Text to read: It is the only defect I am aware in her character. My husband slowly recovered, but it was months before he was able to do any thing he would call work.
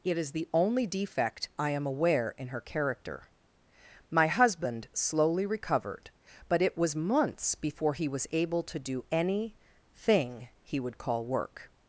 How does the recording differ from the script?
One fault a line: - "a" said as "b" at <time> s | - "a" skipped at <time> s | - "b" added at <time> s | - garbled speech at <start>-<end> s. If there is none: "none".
none